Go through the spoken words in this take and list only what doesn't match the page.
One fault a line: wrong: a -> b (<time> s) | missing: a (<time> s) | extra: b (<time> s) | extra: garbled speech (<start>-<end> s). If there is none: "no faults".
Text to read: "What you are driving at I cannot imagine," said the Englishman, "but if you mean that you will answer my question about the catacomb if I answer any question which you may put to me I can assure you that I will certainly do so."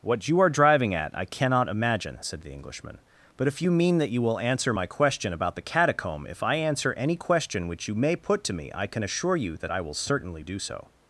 no faults